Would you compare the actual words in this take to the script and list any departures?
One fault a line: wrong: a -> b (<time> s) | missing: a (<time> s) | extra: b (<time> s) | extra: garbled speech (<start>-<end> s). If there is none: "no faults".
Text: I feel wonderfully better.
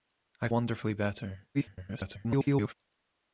missing: feel (0.5 s)
extra: garbled speech (1.5-2.7 s)